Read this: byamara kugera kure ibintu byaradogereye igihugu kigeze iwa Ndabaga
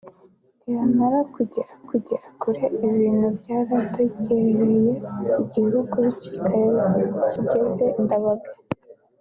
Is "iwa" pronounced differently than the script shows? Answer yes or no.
yes